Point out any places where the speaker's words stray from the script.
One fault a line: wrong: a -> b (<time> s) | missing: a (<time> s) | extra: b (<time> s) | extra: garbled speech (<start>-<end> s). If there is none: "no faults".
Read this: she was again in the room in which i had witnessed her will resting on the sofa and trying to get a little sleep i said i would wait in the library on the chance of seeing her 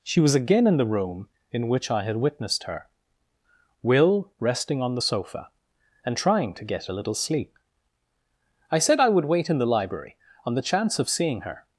no faults